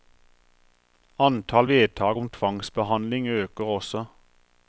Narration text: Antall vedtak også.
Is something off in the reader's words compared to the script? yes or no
yes